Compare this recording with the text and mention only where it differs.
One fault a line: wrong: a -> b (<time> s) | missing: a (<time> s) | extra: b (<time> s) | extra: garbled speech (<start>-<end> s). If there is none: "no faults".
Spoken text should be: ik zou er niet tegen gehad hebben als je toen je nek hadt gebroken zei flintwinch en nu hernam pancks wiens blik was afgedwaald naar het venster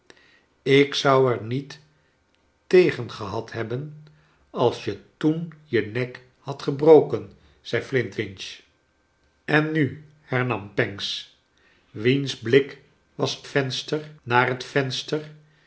wrong: afgedwaald -> venster (13.4 s)